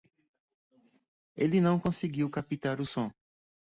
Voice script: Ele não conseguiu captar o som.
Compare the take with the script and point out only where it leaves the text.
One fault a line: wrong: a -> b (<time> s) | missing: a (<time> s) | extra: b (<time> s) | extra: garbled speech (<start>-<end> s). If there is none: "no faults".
no faults